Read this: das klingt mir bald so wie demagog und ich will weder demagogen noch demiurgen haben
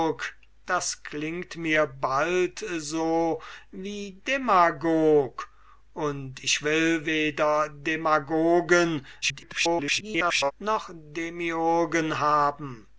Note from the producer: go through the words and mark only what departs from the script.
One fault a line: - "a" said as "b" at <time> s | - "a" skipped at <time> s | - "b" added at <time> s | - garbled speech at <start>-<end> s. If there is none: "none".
- garbled speech at 9.2-10.5 s